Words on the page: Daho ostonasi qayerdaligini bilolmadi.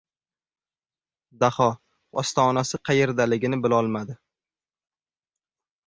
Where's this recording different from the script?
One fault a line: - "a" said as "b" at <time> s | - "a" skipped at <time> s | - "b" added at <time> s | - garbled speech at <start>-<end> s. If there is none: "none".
none